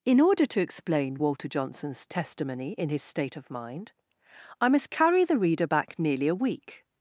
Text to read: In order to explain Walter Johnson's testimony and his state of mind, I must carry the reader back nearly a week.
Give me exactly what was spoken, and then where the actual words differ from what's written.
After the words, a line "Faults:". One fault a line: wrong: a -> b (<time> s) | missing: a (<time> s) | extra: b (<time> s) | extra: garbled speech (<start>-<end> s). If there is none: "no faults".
In order to explain Walter Johnson's testimony in his state of mind, I must carry the reader back nearly a week.
Faults:
wrong: and -> in (2.8 s)